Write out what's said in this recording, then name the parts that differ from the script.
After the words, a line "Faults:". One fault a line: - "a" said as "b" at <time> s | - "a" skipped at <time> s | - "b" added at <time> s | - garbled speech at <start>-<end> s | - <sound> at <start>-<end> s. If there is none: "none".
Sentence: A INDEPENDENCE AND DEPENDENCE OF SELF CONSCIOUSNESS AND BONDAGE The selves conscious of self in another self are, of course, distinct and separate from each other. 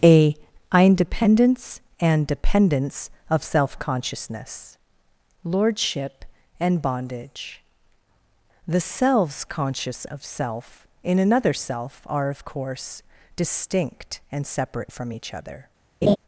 A INDEPENDENCE AND DEPENDENCE OF SELF CONSCIOUSNESS LORDSHIP AND BONDAGE The selves conscious of self in another self are, of course, distinct and separate from each other.
Faults:
- "LORDSHIP" added at 5.4 s
- laugh at 16.0-16.2 s